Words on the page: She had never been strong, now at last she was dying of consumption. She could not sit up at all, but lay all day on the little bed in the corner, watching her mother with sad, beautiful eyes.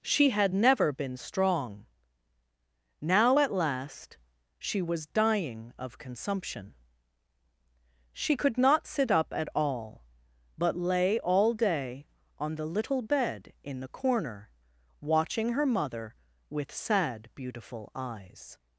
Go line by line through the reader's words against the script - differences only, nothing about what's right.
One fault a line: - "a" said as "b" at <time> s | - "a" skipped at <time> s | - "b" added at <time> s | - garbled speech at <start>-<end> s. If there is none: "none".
none